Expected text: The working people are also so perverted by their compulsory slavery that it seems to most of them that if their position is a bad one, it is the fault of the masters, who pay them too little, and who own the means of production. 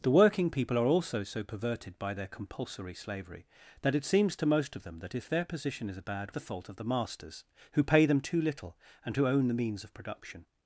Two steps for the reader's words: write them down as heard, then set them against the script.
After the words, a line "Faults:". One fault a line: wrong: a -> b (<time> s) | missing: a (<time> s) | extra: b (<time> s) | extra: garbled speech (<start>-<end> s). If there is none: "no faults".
The working people are also so perverted by their compulsory slavery that it seems to most of them that if their position is a bad the fault of the masters, who pay them too little, and who own the means of production.
Faults:
missing: one it is (6.3 s)